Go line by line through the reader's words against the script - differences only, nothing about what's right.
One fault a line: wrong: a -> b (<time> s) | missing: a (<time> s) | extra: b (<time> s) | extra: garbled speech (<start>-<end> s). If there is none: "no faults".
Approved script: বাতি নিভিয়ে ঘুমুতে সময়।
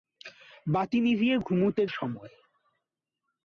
no faults